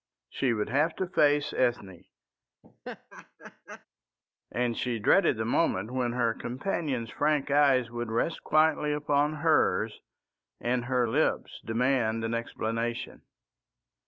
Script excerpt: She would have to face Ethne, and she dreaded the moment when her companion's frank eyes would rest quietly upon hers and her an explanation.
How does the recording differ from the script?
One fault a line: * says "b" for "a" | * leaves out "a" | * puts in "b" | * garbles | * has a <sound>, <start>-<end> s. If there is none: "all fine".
* has a laugh, 2.6-3.9 s
* puts in "lips demand"